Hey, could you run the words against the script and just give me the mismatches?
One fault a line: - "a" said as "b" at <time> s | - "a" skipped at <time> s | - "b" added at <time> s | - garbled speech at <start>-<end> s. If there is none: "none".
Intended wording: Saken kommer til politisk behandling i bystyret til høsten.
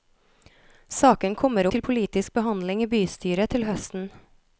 none